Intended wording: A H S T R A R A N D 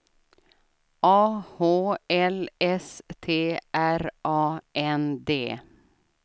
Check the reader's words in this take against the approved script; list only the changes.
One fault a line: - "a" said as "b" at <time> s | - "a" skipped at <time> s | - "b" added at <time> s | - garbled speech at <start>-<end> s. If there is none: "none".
- "L" added at 2.1 s
- "R A" skipped at 4.6 s